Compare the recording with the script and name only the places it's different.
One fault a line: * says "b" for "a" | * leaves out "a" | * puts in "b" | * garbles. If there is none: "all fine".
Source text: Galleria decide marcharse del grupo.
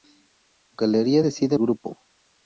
* leaves out "marcharse del"